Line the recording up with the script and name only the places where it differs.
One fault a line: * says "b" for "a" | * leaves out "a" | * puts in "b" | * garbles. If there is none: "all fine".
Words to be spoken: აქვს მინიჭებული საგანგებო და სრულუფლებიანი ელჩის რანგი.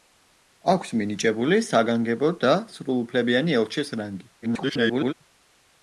* garbles